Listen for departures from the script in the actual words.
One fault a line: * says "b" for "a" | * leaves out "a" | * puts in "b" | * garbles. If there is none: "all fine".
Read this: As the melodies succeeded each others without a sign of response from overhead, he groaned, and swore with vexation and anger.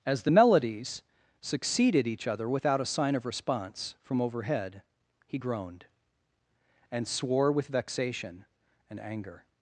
* says "other" for "others"